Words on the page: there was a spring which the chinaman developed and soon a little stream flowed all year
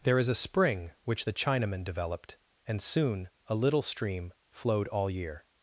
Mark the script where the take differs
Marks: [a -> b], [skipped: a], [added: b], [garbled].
there [was -> is] a spring which the chinaman developed and soon a little stream flowed all year